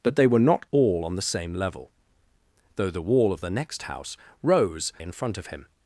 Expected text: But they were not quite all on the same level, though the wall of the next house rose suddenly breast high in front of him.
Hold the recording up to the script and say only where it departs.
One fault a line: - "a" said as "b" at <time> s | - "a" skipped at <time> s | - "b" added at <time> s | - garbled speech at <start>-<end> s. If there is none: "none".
- "quite" skipped at 0.7 s
- "suddenly breast high" skipped at 4.9 s